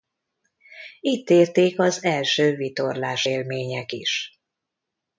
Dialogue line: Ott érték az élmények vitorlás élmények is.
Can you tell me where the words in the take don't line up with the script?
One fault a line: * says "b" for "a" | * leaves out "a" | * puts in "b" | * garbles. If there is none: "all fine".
* says "Itt" for "Ott"
* says "első" for "élmények"